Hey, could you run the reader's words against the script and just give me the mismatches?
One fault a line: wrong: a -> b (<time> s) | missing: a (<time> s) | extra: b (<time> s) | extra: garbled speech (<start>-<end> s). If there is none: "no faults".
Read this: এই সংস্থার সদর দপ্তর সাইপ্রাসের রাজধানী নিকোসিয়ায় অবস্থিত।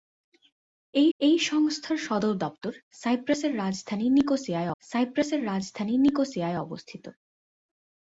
extra: এই (1.2 s)
extra: সাইপ্রাসের রাজধানী নিকোসিয়ায় (4.8 s)